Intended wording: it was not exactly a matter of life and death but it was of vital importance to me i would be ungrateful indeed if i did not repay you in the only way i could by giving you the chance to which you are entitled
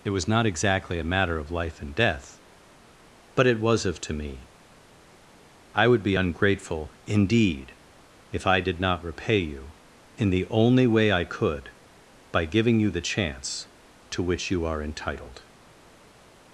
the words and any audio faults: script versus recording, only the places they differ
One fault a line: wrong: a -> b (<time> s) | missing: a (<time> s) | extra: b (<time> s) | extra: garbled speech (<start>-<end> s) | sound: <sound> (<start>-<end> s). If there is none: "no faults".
missing: vital importance (4.0 s)